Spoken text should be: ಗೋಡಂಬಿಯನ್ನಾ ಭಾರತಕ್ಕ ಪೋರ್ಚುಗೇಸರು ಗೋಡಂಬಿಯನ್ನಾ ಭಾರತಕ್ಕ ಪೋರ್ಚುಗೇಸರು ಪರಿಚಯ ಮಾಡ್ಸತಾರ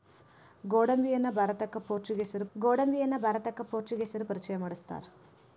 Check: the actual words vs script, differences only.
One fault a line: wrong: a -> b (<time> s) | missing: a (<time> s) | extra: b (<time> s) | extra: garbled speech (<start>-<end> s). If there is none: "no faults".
no faults